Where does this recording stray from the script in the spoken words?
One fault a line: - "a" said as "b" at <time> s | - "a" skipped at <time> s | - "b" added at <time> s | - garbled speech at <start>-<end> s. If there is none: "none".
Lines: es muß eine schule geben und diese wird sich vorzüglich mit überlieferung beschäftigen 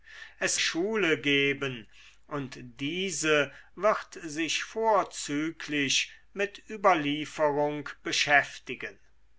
- "muß eine" skipped at 0.6 s